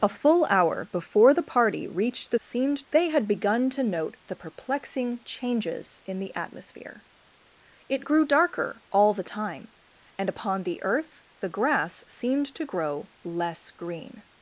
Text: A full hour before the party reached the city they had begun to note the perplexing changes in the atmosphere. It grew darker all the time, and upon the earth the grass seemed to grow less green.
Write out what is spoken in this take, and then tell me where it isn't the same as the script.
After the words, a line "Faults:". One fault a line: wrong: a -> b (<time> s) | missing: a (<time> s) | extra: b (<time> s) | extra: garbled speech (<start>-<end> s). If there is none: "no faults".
A full hour before the party reached the seemed they had begun to note the perplexing changes in the atmosphere. It grew darker all the time, and upon the earth the grass seemed to grow less green.
Faults:
wrong: city -> seemed (2.4 s)